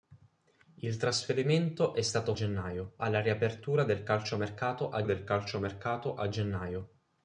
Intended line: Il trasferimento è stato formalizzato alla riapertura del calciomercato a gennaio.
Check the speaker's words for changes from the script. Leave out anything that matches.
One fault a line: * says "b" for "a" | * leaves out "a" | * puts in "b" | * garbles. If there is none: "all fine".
* says "gennaio" for "formalizzato"
* puts in "del calciomercato a"